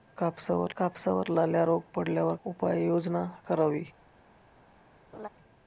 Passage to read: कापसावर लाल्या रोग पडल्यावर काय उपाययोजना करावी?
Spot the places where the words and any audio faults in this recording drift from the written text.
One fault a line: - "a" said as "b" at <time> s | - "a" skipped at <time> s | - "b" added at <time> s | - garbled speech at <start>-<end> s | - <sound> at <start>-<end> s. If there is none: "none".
- "कापसावर" added at 0.8 s
- "काय" skipped at 2.4 s
- laugh at 5.1-5.3 s